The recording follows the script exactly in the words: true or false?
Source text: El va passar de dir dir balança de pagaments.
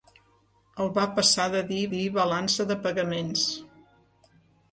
true